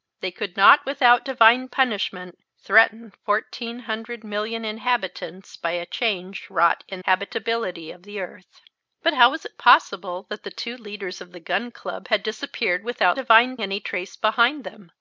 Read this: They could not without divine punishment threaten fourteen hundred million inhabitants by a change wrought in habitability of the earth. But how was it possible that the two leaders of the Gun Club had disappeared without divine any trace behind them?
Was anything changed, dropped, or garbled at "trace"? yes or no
no